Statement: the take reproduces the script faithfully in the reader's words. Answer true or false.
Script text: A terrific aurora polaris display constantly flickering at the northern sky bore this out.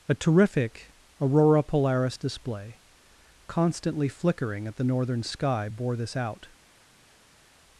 true